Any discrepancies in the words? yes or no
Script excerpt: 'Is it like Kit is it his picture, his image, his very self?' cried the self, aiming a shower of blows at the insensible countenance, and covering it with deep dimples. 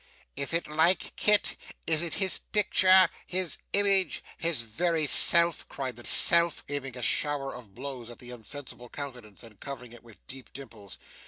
no